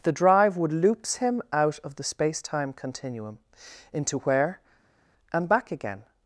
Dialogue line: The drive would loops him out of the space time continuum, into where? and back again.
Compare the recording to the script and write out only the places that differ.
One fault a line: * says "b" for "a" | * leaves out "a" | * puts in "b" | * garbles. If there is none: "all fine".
all fine